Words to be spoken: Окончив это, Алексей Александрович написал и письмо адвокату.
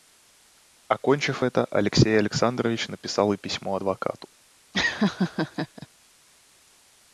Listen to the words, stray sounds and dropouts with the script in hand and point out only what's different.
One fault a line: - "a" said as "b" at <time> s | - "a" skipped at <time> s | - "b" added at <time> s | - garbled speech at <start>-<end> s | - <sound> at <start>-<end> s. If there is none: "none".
- laugh at 4.7-5.9 s